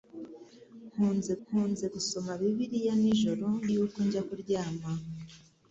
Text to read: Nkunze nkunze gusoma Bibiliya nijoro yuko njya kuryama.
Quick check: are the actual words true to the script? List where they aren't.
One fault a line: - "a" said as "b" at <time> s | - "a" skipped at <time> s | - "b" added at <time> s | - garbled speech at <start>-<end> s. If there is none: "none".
none